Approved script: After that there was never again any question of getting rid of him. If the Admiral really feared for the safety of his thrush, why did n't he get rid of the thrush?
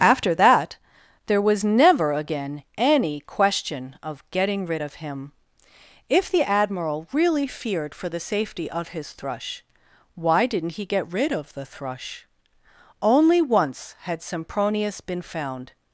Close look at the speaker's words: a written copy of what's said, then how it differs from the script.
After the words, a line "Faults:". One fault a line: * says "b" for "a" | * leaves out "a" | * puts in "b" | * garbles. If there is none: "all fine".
After that there was never again any question of getting rid of him. If the Admiral really feared for the safety of his thrush, why did n't he get rid of the thrush? Only once had Sempronius been found
Faults:
* puts in "Only once had Sempronius been found"